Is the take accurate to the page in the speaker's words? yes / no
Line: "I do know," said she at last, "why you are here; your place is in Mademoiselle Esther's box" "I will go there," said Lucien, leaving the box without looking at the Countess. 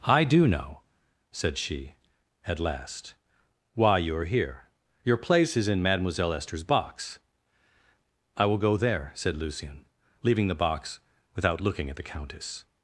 yes